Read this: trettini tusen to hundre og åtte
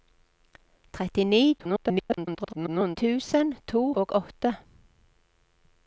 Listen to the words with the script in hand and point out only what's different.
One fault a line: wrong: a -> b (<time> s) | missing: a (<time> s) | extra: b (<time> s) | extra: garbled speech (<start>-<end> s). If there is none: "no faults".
extra: garbled speech (1.6-3.0 s)
missing: hundre (3.8 s)